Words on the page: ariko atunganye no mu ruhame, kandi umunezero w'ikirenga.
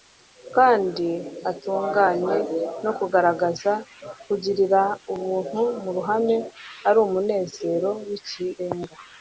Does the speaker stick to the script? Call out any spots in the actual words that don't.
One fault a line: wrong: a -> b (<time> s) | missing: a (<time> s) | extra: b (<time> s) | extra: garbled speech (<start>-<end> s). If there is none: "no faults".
wrong: ariko -> kandi (0.6 s)
extra: kugaragaza kugirira ubuntu (3.0 s)
wrong: kandi -> ari (6.9 s)